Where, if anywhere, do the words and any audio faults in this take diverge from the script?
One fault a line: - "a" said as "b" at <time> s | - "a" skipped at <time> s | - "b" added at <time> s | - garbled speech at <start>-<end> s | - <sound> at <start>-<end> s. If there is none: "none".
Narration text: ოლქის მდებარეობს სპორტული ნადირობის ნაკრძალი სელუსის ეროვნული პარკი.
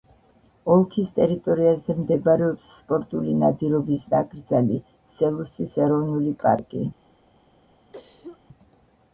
- "ტერიტორიაზე" added at 1.2 s
- cough at 7.9-8.4 s